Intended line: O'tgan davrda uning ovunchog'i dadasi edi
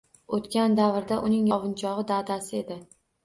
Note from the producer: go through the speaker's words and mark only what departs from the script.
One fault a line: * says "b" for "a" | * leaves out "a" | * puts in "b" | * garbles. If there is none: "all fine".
all fine